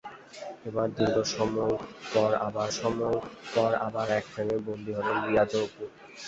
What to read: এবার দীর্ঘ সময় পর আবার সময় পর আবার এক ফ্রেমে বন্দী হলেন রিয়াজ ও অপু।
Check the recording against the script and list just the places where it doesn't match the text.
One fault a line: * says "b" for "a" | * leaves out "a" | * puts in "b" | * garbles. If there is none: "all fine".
all fine